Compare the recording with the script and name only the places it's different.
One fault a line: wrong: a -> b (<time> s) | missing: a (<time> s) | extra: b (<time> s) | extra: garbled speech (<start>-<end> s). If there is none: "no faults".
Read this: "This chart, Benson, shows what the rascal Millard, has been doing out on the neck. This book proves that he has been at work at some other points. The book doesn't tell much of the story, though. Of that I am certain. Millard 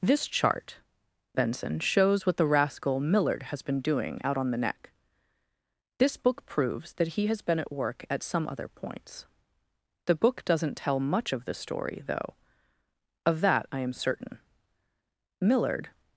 no faults